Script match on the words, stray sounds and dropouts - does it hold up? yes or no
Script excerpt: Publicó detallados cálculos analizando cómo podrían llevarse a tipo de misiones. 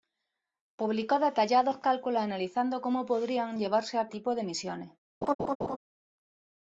no